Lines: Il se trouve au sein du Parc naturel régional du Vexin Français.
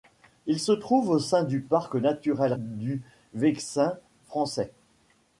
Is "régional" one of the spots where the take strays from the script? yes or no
yes